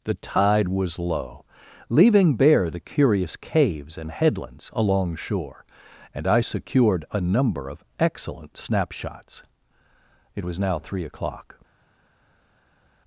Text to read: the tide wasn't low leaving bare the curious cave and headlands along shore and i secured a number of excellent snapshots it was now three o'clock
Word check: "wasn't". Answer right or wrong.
wrong